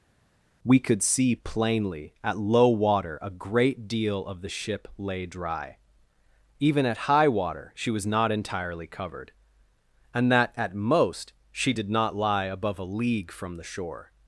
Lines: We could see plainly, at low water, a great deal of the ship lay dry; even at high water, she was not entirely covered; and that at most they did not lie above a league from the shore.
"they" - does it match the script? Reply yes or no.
no